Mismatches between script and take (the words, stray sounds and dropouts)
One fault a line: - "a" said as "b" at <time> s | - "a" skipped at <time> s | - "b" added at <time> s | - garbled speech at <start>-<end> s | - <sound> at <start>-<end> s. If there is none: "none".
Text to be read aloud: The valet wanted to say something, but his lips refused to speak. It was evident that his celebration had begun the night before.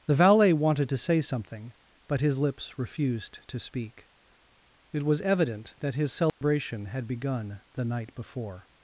- dropout at 6.3-6.4 s